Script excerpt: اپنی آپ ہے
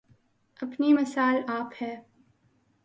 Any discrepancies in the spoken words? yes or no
yes